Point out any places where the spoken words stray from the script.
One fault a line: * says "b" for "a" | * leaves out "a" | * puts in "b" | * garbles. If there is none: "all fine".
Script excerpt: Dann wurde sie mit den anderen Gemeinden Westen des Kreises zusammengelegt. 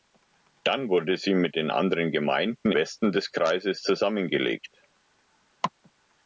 all fine